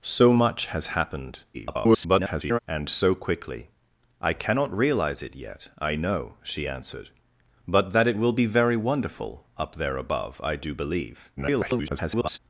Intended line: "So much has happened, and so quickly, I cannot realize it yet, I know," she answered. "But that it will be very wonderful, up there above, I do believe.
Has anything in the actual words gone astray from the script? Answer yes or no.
yes